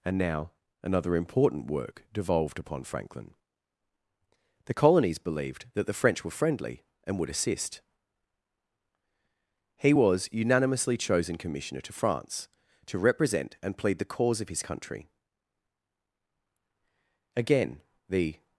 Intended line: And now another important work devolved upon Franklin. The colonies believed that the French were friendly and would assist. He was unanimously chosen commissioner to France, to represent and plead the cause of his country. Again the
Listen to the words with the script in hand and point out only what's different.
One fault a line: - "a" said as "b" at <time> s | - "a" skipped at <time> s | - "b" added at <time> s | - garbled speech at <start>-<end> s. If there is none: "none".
none